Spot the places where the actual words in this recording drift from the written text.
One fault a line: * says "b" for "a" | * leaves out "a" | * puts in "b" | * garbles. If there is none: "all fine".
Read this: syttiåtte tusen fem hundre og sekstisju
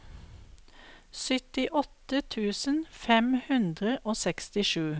all fine